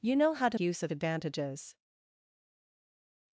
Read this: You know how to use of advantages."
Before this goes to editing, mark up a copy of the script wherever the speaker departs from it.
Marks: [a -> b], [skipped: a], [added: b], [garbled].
You know how to use of advantages."